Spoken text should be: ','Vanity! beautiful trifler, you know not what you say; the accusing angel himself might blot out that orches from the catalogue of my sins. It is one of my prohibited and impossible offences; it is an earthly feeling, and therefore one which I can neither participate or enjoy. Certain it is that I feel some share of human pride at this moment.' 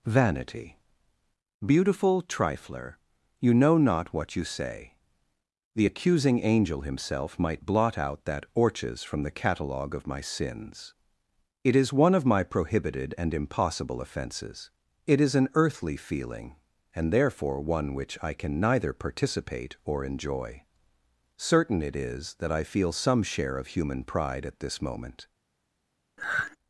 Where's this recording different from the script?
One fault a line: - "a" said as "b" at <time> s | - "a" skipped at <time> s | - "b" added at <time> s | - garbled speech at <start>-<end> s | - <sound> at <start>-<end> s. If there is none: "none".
- sigh at 26.2-26.6 s